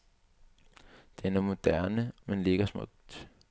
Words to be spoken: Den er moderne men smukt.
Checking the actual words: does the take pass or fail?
fail